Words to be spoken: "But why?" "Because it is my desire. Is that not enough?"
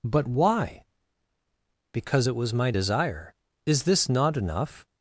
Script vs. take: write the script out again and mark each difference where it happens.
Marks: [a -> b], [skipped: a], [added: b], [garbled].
"But why?" "Because it [is -> was] my desire. Is [that -> this] not enough?"